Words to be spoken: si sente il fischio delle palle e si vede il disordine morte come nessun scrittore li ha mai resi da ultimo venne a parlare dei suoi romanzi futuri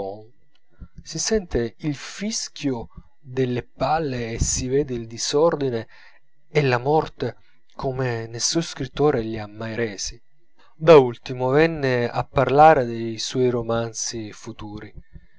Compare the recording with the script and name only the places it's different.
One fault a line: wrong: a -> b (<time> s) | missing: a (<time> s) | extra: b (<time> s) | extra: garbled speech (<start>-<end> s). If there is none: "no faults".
extra: e la (6.5 s)